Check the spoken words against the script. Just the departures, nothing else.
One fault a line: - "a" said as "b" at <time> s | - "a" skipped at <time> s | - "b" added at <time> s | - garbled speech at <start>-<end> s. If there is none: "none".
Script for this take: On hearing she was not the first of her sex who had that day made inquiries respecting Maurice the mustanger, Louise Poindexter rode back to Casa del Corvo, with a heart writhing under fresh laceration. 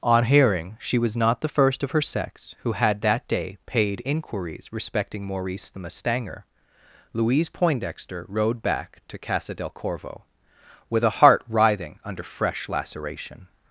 - "made" said as "paid" at 3.7 s